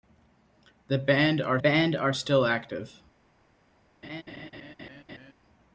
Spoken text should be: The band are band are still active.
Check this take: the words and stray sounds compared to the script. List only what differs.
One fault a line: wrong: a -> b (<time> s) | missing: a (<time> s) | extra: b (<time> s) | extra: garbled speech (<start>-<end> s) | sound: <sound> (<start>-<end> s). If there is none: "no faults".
sound: laugh (4.0-5.3 s)